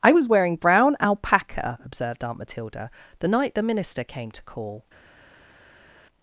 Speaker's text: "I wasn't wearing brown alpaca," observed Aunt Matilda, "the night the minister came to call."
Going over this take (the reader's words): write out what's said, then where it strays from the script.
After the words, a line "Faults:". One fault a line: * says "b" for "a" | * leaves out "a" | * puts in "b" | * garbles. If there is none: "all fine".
"I was wearing brown alpaca," observed Aunt Matilda, "the night the minister came to call."
Faults:
* says "was" for "wasn't"